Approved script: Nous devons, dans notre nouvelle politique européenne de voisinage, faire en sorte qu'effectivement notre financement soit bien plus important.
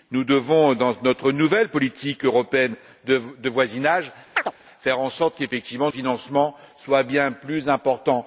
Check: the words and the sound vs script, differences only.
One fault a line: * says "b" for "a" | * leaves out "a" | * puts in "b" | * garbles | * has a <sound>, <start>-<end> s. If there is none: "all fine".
* has a chirp, 4.4-4.5 s
* leaves out "notre"